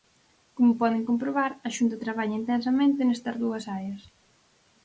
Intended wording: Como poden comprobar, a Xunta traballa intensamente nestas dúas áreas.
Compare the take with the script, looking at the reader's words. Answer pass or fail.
pass